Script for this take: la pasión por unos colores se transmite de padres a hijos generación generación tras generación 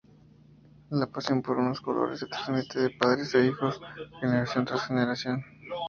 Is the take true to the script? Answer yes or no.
no